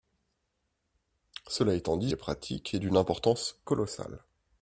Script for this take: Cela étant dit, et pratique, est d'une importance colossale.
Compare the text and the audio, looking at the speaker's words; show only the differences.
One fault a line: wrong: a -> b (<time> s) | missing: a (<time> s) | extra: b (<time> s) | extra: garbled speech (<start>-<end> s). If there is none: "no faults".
no faults